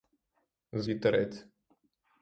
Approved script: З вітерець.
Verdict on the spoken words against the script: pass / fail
pass